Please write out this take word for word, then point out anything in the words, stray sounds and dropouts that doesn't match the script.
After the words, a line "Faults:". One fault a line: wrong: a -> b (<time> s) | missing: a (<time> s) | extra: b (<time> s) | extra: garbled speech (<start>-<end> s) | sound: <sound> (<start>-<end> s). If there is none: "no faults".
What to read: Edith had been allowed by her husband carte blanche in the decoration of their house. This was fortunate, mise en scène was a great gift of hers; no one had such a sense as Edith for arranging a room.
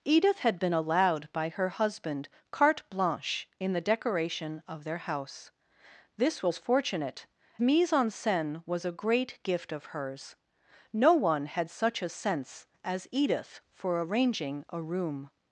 Edith had been allowed by her husband carte blanche in the decoration of their house. This was fortunate, mise en scène was a great gift of hers; no one had such a sense as Edith for arranging a room.
Faults:
no faults